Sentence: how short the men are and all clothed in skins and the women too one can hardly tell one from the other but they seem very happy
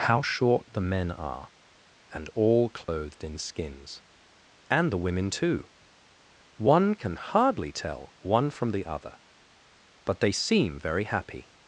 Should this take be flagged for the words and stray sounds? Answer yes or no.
yes